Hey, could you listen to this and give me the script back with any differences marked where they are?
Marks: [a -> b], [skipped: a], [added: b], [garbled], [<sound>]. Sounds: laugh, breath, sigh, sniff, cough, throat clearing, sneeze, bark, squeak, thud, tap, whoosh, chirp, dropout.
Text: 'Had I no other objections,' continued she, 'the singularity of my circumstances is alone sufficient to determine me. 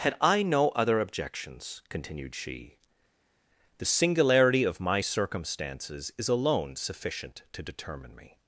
'Had I no other objections,' continued she, 'the singularity of my circumstances is alone sufficient to determine me.